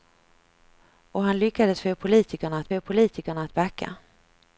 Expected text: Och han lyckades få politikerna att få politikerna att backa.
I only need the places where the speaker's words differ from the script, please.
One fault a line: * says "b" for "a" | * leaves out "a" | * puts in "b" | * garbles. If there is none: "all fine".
all fine